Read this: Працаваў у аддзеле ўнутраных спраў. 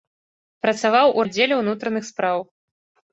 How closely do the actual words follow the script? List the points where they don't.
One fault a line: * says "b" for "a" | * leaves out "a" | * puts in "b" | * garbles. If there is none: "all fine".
all fine